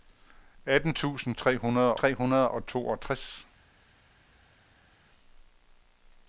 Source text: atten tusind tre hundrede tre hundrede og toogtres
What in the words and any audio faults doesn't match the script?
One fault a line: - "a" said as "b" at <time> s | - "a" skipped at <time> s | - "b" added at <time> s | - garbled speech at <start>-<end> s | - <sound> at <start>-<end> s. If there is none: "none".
none